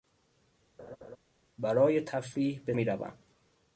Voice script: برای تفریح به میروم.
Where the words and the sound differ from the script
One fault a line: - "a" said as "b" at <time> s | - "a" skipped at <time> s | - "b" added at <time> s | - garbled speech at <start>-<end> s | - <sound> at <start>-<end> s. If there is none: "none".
- laugh at 0.8-1.2 s